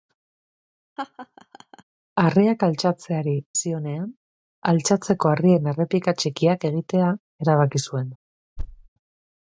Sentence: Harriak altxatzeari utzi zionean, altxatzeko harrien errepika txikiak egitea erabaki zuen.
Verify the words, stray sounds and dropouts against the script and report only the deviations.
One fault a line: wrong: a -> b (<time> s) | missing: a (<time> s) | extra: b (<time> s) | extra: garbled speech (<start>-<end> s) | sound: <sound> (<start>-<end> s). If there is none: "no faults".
sound: laugh (1.0-1.8 s)
missing: utzi (3.3 s)
sound: thud (8.6-8.9 s)